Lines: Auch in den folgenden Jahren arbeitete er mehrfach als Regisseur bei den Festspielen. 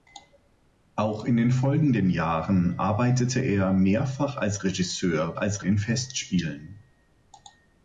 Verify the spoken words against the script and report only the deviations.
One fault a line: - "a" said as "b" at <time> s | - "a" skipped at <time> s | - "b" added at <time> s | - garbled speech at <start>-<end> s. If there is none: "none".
- "bei" said as "als" at 5.3 s